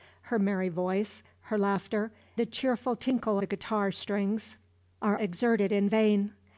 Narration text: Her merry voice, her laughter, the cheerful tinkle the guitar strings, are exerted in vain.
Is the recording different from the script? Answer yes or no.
no